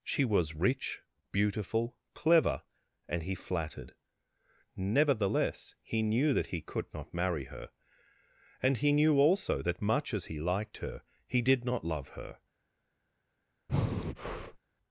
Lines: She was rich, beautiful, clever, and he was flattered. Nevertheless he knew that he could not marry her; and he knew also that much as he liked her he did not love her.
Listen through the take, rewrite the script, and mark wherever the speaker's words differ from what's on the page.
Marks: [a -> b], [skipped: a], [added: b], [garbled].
She was rich, beautiful, clever, and he [skipped: was] flattered. Nevertheless he knew that he could not marry her; and he knew also that much as he liked her he did not love her.